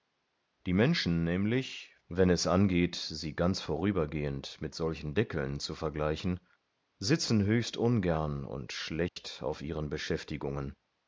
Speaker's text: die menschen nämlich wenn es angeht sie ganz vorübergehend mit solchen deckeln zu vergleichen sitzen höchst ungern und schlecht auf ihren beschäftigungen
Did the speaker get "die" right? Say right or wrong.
right